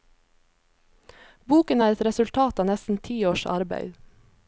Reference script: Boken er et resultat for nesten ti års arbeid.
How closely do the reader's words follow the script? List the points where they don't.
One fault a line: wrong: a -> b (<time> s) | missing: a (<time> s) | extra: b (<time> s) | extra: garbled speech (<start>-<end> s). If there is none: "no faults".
wrong: for -> av (2.6 s)